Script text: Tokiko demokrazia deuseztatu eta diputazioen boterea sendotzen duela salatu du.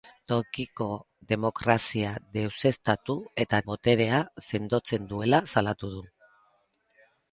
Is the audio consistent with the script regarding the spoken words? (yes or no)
no